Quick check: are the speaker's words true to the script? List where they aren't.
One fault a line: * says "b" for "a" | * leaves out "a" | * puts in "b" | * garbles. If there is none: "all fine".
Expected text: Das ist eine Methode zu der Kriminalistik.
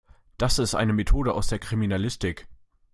* says "aus" for "zu"